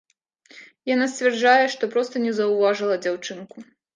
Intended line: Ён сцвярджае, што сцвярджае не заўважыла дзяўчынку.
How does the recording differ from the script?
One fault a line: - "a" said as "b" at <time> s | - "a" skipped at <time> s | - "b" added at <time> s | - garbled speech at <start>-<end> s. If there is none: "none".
- "Ён" said as "Яна" at 0.9 s
- "сцвярджае" said as "проста" at 1.9 s